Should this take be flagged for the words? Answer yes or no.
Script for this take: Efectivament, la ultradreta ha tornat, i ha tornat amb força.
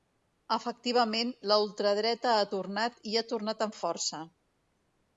no